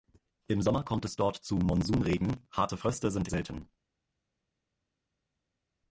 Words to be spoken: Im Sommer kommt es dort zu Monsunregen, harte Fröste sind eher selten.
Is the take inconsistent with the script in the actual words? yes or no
yes